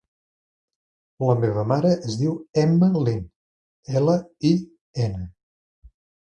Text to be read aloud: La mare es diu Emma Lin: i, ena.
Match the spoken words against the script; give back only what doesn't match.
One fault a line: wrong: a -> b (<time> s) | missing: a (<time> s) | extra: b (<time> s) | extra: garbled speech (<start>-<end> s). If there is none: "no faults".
extra: meva (1.4 s)
extra: ela (4.0 s)